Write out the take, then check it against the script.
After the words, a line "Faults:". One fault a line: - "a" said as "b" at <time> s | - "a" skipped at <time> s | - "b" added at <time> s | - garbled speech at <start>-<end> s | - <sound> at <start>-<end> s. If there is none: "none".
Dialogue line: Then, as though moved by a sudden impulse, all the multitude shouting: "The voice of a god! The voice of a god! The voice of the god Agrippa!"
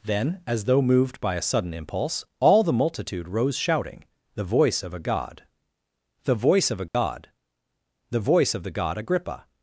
Then, as though moved by a sudden impulse, all the multitude rose shouting: "The voice of a god! The voice of a god! The voice of the god Agrippa!"
Faults:
- "rose" added at 3.3 s
- dropout at 6.9-6.9 s